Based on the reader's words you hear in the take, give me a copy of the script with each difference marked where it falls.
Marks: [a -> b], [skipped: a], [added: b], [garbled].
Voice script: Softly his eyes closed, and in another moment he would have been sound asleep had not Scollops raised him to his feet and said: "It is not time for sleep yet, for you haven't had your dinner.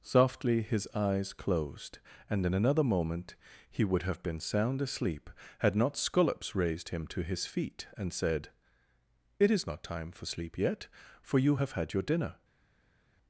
Softly his eyes closed, and in another moment he would have been sound asleep had not Scollops raised him to his feet and said: "It is not time for sleep yet, for you [haven't -> have] had your dinner.